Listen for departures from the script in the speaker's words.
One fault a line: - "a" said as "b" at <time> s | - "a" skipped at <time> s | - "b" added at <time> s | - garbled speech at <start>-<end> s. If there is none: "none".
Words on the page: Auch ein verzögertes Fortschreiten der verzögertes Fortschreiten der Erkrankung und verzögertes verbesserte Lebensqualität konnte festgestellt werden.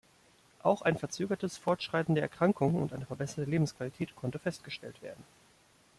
- "verzögertes Fortschreiten der" skipped at 2.2 s
- "verzögertes" said as "eine" at 2.9 s